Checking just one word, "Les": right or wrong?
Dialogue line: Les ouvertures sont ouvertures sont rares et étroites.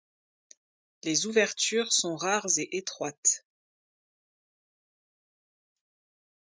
right